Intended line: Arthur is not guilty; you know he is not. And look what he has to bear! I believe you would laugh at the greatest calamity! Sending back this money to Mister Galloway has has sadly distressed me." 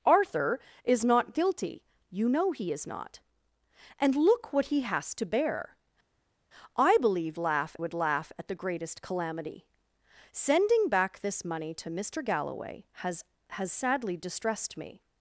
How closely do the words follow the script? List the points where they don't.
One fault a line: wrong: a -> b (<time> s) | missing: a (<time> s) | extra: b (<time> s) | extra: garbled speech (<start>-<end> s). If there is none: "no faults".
wrong: you -> laugh (7.4 s)